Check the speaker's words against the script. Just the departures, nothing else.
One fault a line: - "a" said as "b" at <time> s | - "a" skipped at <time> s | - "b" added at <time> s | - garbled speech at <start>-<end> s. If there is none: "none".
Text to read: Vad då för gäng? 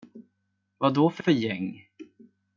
- "för" added at 1.2 s